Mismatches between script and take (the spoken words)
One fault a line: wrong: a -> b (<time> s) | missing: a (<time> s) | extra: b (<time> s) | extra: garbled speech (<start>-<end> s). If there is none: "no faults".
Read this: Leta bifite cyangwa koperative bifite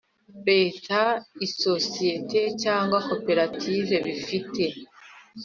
wrong: bifite -> isosiyete (1.4 s)